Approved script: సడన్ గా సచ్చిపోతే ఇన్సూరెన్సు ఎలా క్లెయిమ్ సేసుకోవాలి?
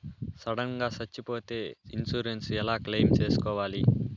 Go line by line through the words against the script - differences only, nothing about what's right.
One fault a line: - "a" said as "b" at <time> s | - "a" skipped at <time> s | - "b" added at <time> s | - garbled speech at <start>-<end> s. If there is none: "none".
none